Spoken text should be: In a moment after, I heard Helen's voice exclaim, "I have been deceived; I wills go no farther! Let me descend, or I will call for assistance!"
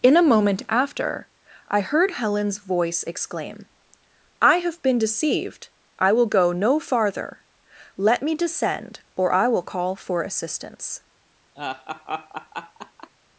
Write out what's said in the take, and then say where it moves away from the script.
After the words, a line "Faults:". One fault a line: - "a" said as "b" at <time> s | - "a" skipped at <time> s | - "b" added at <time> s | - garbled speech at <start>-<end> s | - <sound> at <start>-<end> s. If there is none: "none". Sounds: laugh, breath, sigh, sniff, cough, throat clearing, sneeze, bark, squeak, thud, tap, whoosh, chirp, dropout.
In a moment after, I heard Helen's voice exclaim, "I have been deceived; I will go no farther! Let me descend, or I will call for assistance!"
Faults:
- "wills" said as "will" at 6.1 s
- laugh at 11.6-13.1 s